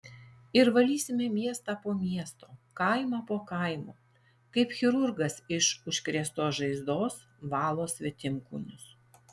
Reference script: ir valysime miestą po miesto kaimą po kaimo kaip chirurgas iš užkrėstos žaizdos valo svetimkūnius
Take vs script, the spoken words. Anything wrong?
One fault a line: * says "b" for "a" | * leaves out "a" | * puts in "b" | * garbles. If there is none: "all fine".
all fine